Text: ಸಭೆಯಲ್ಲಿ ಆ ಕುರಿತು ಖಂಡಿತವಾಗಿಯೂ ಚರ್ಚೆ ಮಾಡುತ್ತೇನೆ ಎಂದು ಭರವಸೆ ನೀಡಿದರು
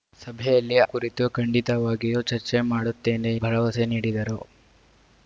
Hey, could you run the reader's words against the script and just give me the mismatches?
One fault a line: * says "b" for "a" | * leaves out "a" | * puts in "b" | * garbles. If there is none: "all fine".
* leaves out "ಆ"
* leaves out "ಎಂದು"